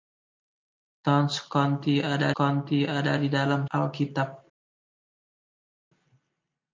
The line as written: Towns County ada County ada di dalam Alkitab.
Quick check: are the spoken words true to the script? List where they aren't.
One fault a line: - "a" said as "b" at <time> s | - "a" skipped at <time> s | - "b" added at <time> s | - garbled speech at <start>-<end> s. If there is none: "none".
none